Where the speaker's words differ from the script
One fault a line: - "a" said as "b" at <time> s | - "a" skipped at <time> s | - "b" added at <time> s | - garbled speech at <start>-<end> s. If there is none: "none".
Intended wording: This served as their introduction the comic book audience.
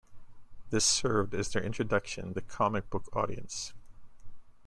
none